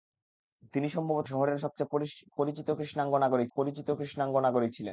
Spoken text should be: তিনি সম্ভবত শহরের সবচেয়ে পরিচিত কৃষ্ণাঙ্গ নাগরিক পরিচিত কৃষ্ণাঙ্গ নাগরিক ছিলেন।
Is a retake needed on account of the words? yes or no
no